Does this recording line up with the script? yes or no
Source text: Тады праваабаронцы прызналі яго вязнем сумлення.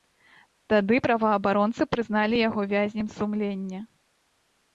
yes